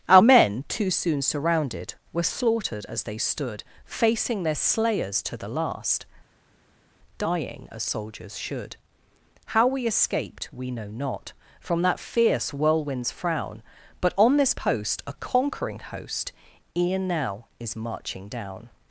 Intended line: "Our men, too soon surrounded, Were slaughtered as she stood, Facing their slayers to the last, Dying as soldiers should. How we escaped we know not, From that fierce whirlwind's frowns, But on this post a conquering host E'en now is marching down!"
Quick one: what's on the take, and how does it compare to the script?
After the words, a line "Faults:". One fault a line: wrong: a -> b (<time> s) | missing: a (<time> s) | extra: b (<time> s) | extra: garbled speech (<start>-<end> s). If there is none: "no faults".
"Our men, too soon surrounded, Were slaughtered as they stood, Facing their slayers to the last, Dying as soldiers should. How we escaped we know not, From that fierce whirlwind's frown, But on this post a conquering host E'en now is marching down!"
Faults:
wrong: she -> they (3.0 s)
wrong: frowns -> frown (13.1 s)